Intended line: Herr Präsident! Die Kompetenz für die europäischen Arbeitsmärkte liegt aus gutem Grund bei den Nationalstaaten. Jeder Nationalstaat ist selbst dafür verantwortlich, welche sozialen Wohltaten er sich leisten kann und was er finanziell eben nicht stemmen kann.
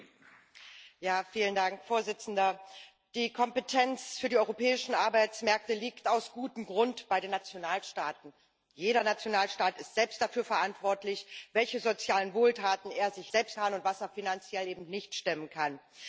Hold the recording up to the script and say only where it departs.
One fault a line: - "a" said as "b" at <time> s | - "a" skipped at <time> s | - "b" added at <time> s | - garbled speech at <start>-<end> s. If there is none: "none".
- "leisten" said as "selbst" at 13.3 s